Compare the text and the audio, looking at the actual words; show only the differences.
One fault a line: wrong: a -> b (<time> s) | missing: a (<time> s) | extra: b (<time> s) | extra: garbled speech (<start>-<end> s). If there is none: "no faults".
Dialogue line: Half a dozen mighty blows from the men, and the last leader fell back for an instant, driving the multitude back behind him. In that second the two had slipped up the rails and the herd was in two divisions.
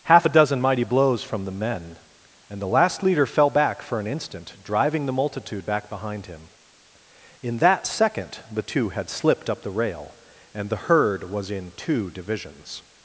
wrong: rails -> rail (9.7 s)